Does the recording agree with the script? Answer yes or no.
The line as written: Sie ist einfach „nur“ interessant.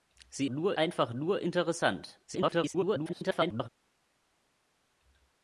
no